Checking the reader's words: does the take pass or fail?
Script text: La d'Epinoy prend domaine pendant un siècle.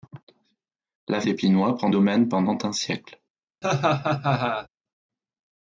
pass